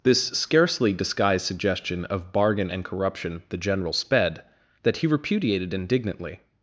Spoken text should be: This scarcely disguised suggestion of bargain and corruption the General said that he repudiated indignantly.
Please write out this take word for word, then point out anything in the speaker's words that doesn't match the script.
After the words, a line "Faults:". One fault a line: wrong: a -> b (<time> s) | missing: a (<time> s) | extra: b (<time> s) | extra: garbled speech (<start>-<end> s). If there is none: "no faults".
This scarcely disguised suggestion of bargain and corruption the General sped that he repudiated indignantly.
Faults:
wrong: said -> sped (3.9 s)